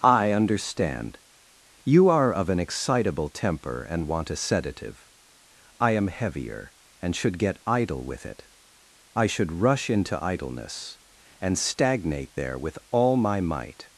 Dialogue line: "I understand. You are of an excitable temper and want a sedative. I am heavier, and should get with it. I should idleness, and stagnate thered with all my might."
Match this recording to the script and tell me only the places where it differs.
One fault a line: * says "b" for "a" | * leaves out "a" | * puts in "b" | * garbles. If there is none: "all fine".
* puts in "idle"
* puts in "rush into"
* says "there" for "thered"